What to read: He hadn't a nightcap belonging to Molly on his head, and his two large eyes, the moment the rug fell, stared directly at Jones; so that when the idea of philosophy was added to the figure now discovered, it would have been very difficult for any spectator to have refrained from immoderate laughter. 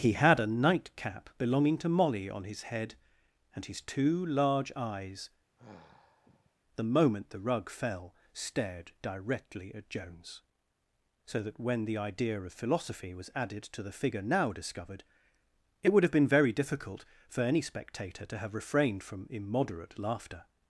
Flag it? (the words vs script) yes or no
yes